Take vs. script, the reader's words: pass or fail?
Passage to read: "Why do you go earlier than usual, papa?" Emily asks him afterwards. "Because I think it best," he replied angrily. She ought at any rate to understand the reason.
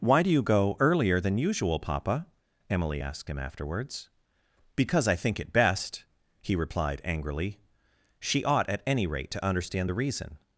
fail